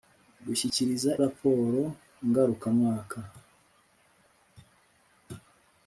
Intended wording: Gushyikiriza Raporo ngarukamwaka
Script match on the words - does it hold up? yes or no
yes